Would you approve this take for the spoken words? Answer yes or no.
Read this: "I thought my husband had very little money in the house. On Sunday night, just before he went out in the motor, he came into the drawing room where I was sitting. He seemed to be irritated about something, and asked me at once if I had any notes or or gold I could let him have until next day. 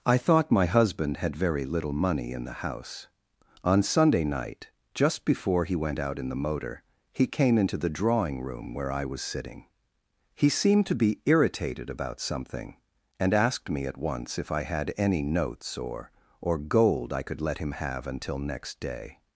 yes